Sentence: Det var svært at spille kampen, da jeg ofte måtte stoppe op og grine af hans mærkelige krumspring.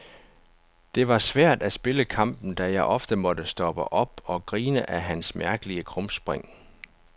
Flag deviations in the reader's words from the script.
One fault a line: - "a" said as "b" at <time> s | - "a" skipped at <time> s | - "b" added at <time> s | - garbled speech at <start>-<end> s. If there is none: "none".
none